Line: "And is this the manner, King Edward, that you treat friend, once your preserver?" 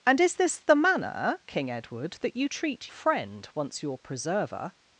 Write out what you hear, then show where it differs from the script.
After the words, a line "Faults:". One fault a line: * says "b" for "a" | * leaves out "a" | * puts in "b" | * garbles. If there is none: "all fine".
"And is this the manner, King Edward, that you treat friend, once your preserver?"
Faults:
all fine